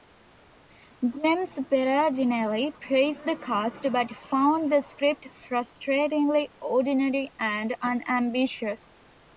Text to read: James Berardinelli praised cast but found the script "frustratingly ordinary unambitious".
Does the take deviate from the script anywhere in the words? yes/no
yes